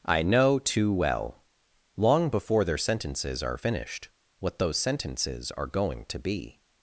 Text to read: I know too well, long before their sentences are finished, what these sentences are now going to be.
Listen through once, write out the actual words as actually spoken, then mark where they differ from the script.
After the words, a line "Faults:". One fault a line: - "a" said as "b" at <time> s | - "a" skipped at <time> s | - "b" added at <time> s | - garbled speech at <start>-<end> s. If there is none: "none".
I know too well, long before their sentences are finished, what those sentences are going to be.
Faults:
- "these" said as "those" at 4.6 s
- "now" skipped at 5.7 s